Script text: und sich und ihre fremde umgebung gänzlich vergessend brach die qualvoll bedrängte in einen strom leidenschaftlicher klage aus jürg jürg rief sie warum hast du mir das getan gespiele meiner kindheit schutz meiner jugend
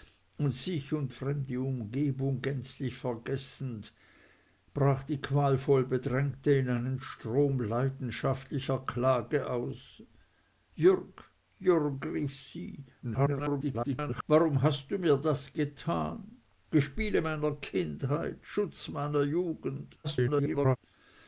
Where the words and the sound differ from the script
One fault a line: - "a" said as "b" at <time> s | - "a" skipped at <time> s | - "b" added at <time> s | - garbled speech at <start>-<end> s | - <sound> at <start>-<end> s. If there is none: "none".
- "ihre" skipped at 1.1 s
- garbled speech at 13.0-14.2 s
- garbled speech at 20.0-20.8 s